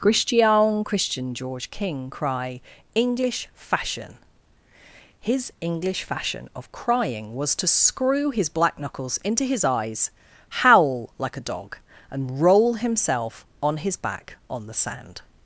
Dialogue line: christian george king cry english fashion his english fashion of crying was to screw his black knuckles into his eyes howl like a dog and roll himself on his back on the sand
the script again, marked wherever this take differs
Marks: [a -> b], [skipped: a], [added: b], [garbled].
christian [added: christian] george king cry english fashion his english fashion of crying was to screw his black knuckles into his eyes howl like a dog and roll himself on his back on the sand